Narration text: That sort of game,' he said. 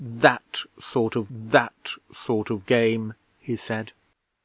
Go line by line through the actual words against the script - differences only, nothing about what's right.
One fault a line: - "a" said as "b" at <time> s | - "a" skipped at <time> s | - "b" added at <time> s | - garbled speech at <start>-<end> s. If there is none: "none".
- "that sort of" added at 1.3 s